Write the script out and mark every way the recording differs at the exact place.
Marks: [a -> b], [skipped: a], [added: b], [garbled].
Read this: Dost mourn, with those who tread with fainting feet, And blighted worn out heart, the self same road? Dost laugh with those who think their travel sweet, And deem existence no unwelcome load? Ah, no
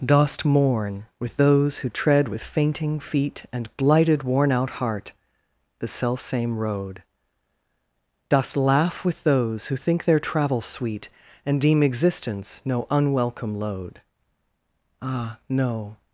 Dost mourn, with those who tread with fainting feet, And blighted worn out heart, the self same road? Dost laugh with those who think their travel sweet, And deem existence no unwelcome load? Ah, no